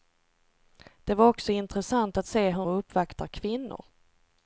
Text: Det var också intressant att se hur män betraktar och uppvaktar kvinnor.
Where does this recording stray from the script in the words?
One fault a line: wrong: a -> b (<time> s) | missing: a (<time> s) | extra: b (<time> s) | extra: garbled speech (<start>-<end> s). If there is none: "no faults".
missing: män betraktar (2.7 s)